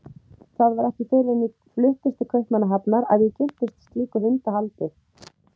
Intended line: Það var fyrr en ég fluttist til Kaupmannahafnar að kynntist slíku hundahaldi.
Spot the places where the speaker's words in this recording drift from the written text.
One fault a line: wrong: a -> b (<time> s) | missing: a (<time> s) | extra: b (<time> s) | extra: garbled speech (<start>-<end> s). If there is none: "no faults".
extra: ekki (0.9 s)
extra: ég (3.3 s)